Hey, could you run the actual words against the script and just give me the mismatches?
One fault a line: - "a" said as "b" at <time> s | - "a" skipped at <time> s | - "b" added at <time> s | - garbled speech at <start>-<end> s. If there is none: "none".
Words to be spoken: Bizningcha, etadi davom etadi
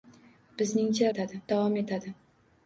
none